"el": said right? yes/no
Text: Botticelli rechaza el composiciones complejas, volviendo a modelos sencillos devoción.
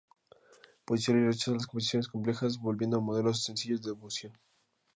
no